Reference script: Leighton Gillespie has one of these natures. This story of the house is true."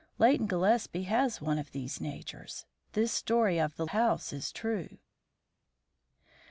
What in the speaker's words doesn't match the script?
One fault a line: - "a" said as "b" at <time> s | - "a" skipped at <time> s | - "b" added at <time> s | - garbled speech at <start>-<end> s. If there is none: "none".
none